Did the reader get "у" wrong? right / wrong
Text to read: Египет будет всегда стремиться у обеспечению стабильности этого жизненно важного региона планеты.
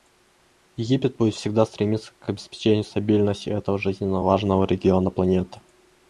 wrong